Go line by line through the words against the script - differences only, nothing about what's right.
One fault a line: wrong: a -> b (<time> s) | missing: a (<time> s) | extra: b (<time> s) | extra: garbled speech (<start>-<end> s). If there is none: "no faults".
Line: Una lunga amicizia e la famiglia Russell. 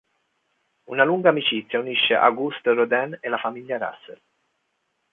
extra: unisce Auguste Rodin (1.8 s)